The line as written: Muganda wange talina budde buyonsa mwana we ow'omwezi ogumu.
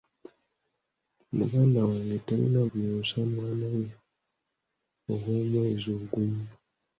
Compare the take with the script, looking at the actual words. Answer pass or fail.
fail